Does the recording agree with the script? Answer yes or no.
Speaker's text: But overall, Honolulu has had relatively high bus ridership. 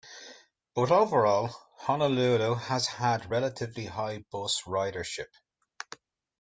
yes